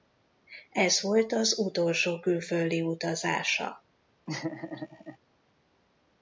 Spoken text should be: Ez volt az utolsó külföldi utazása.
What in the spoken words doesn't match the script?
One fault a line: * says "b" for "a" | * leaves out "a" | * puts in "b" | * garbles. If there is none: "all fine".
all fine